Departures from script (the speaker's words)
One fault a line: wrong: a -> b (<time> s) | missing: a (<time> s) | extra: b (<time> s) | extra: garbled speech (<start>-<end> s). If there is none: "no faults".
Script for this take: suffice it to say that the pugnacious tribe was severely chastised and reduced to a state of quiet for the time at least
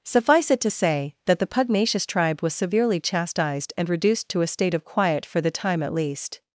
no faults